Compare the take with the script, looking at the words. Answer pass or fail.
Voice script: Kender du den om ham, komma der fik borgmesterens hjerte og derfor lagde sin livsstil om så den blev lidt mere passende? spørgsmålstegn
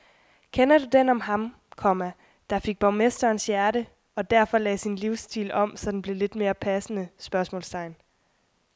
pass